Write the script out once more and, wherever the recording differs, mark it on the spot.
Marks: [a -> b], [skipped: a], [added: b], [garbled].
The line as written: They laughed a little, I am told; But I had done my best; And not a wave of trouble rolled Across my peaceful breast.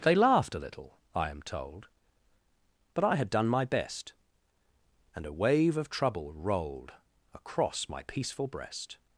They laughed a little, I am told; But I had done my best; And [skipped: not] a wave of trouble rolled Across my peaceful breast.